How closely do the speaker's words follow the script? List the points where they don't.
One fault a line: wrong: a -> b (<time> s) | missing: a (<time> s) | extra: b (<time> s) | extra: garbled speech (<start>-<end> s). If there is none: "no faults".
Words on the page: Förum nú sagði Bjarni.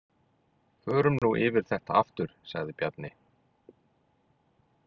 extra: yfir þetta aftur (1.5 s)